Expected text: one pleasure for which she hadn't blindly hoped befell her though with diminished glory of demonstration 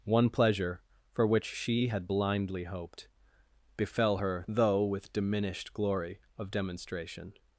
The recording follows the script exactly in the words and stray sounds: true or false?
false